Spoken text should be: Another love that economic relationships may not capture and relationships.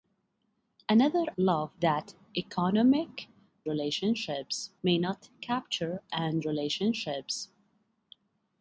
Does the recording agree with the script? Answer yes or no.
yes